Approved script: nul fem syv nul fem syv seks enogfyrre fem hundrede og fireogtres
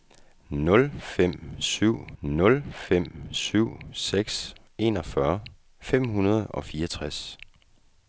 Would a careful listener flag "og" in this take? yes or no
no